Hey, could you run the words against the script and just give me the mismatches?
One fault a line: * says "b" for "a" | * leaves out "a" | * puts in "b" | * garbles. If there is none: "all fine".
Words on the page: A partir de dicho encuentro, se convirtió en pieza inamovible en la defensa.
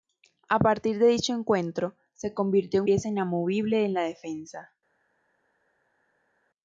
all fine